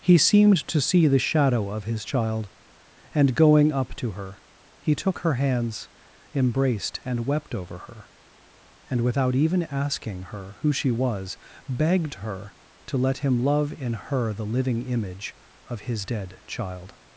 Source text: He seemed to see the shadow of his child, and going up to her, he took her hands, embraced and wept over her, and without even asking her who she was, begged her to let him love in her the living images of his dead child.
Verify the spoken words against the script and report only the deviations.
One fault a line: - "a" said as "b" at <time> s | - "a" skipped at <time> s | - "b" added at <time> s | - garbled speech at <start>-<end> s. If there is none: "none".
- "images" said as "image" at 14.8 s